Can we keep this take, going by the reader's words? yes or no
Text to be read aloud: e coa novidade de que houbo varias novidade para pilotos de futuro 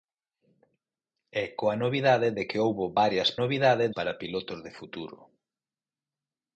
yes